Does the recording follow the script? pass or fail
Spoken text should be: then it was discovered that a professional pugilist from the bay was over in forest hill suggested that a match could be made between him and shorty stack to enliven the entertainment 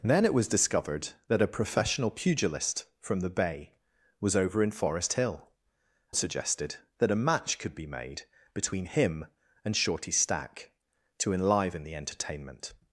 pass